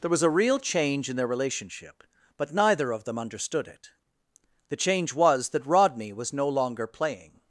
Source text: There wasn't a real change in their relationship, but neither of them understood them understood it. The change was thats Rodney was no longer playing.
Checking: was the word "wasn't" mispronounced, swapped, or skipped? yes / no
yes